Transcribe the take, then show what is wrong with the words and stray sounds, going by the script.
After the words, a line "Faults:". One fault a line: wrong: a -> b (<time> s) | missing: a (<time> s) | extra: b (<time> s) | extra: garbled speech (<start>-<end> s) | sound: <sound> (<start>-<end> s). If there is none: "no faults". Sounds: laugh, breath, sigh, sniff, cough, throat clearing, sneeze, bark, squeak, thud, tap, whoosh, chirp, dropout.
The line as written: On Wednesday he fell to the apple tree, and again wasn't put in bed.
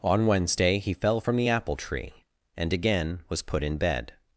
On Wednesday he fell from the apple tree, and again was put in bed.
Faults:
wrong: to -> from (1.2 s)
wrong: wasn't -> was (3.3 s)